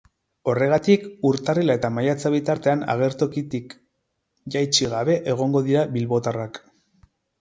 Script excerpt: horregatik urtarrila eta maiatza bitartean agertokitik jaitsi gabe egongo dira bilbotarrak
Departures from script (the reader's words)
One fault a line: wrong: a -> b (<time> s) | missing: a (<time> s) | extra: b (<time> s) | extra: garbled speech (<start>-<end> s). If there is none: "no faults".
no faults